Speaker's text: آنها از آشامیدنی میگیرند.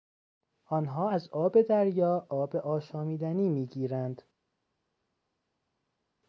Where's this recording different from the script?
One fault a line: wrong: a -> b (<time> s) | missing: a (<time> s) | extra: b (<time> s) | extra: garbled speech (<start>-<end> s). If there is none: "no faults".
extra: آب دریا آب (1.3 s)